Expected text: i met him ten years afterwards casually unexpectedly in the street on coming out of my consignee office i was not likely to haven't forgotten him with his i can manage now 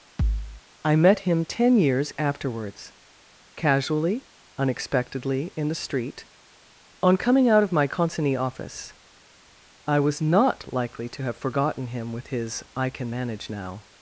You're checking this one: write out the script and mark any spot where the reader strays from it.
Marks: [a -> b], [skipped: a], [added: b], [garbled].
i met him ten years afterwards casually unexpectedly in the street on coming out of my consignee office i was not likely to [haven't -> have] forgotten him with his i can manage now